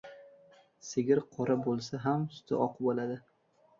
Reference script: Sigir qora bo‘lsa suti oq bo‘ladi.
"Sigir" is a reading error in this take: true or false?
false